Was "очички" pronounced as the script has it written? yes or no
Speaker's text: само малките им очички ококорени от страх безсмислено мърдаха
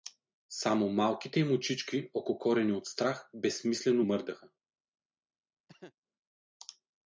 yes